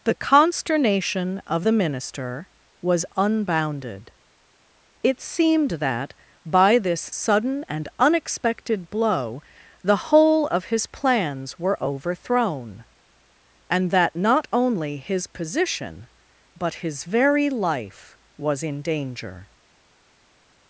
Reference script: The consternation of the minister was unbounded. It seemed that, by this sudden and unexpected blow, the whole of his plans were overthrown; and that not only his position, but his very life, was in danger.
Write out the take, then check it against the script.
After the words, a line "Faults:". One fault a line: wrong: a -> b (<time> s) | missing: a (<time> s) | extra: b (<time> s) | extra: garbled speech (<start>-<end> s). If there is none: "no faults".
The consternation of the minister was unbounded. It seemed that, by this sudden and unexpected blow, the whole of his plans were overthrown; and that not only his position, but his very life, was in danger.
Faults:
no faults